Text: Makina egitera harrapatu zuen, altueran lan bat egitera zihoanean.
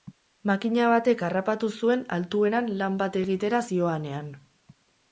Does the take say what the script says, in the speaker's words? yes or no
no